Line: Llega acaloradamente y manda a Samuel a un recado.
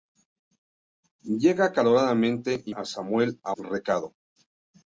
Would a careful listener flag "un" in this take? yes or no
yes